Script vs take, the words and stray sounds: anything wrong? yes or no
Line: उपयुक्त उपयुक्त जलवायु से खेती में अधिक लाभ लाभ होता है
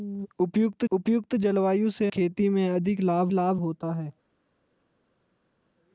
no